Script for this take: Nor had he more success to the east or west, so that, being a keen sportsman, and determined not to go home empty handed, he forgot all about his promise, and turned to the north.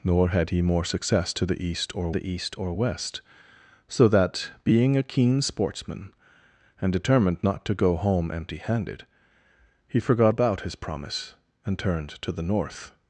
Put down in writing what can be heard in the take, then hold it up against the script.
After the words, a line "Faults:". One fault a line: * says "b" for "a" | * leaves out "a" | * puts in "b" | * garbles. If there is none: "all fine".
Nor had he more success to the east or the east or west, so that, being a keen sportsman, and determined not to go home empty handed, he forgot about his promise, and turned to the north.
Faults:
* puts in "the east or"
* leaves out "all"